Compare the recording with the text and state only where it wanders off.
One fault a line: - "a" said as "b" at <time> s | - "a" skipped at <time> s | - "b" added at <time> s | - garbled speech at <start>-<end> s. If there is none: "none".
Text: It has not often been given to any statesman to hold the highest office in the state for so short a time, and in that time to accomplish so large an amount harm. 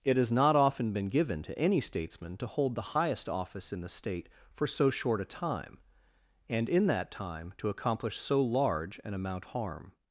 none